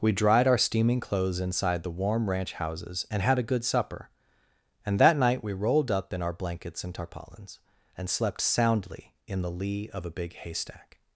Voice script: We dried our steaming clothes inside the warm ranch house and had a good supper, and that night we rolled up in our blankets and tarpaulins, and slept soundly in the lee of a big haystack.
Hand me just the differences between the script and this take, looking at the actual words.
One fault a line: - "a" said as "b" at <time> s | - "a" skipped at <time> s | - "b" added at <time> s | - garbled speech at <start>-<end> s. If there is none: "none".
- "house" said as "houses" at 2.5 s